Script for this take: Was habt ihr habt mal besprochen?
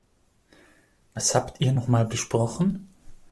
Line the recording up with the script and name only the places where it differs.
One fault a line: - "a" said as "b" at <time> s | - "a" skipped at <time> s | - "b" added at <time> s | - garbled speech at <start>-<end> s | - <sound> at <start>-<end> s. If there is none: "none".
- "habt" said as "noch" at 1.7 s